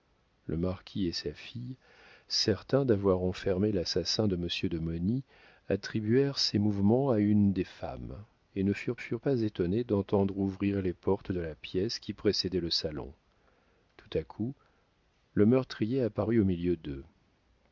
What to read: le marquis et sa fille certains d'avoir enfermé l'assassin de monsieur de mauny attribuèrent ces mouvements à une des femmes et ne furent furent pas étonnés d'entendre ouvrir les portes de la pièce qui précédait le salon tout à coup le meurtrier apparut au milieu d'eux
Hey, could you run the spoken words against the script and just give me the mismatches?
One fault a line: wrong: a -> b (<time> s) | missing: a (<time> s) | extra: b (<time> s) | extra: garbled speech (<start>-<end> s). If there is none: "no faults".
no faults